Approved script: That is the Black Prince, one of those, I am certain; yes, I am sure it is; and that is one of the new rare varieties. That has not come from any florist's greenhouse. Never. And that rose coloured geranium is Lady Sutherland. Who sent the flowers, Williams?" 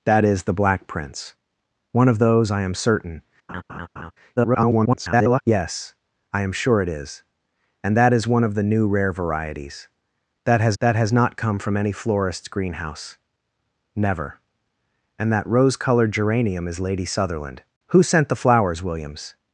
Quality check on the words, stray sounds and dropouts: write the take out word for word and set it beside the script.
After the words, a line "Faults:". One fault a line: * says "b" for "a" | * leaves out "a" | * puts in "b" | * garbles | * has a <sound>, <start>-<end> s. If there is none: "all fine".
That is the Black Prince, one of those, I am certain; [garbled] yes, I am sure it is; and that is one of the new rare varieties. That has that has not come from any florist's greenhouse. Never. And that rose coloured geranium is Lady Sutherland. Who sent the flowers, Williams?"
Faults:
* has a laugh, 3.5-4.1 s
* garbles
* puts in "that has"